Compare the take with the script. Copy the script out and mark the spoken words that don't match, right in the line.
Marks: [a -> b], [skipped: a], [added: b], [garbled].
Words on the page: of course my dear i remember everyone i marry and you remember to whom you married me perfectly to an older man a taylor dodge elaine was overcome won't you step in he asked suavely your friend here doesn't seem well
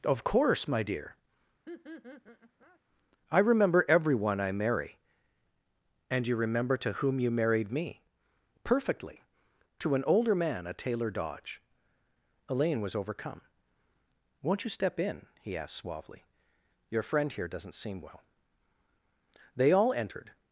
of course my dear i remember everyone i marry and you remember to whom you married me perfectly to an older man a taylor dodge elaine was overcome won't you step in he asked suavely your friend here doesn't seem well [added: they all entered]